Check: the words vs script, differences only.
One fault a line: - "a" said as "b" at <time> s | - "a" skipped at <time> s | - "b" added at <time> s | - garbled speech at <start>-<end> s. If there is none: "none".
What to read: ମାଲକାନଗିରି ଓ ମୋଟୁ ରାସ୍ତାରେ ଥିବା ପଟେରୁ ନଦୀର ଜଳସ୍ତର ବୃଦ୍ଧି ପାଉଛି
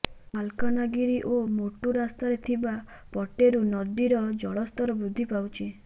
none